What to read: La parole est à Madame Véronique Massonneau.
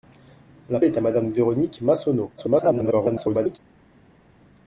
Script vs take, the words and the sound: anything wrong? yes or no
yes